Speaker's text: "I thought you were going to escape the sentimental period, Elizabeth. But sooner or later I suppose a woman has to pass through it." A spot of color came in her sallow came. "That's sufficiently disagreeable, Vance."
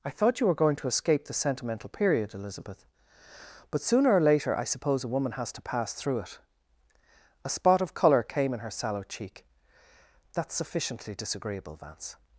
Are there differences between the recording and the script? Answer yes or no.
yes